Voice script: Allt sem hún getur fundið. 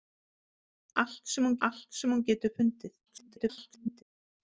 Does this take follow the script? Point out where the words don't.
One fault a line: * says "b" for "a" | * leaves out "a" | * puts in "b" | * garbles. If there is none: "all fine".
* puts in "allt sem hún"
* garbles